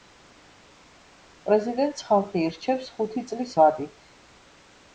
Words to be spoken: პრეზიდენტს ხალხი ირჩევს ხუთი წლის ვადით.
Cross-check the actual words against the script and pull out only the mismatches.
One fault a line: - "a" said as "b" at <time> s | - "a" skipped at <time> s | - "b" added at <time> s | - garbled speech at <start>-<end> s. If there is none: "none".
none